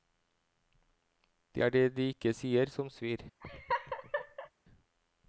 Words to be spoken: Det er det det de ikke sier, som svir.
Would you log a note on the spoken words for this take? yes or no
yes